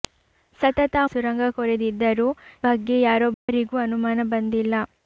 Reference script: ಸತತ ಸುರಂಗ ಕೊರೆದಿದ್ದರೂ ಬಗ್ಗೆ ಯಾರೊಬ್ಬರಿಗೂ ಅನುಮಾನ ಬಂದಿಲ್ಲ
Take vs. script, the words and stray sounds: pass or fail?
fail